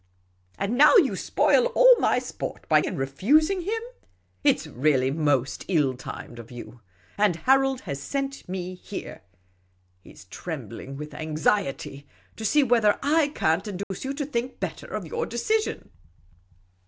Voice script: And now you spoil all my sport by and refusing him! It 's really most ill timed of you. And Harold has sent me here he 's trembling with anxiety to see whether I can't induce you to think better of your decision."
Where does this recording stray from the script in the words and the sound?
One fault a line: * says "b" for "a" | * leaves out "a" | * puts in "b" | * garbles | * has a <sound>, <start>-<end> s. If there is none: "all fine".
* has a dropout, 13.8-13.9 s